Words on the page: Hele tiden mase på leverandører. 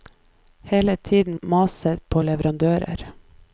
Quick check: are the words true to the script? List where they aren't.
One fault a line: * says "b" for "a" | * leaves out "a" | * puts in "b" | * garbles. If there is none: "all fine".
all fine